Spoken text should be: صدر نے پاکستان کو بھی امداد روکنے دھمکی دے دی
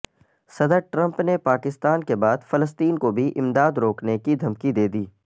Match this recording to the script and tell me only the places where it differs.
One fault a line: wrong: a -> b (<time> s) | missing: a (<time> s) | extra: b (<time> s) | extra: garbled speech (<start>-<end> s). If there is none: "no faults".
extra: ٹرمپ (0.9 s)
extra: کے بعد فلسطین (2.0 s)
extra: کی (4.2 s)